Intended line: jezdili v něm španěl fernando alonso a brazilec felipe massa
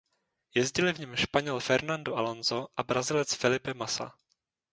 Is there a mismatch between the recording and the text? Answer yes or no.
no